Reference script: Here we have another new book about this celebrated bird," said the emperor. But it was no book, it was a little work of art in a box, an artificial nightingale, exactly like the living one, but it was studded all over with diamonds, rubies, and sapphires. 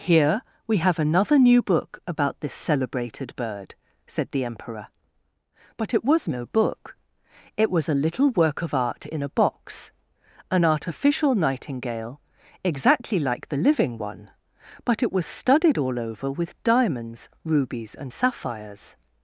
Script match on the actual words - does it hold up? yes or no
yes